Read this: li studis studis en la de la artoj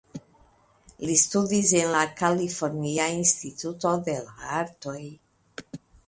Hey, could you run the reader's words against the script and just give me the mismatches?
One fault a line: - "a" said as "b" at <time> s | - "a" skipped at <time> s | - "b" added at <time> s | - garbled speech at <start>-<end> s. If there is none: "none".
- "studis" skipped at 1.7 s
- "kalifornia instituto" added at 2.2 s